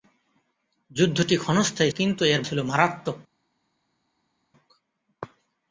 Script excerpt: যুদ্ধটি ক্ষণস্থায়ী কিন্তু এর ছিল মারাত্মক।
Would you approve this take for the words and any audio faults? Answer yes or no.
yes